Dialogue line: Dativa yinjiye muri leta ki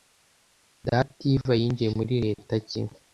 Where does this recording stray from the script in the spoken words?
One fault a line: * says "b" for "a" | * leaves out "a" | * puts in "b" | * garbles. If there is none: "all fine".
all fine